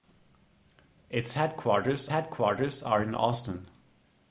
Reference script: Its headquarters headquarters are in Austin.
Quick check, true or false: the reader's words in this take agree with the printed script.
true